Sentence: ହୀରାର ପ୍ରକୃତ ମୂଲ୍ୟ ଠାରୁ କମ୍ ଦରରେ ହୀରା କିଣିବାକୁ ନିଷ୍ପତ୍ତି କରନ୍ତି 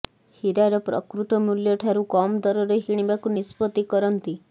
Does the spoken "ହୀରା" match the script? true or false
false